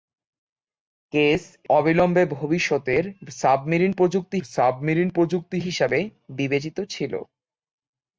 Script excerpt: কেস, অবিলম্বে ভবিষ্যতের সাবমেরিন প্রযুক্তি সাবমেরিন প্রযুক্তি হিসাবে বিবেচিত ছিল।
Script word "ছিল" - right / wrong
right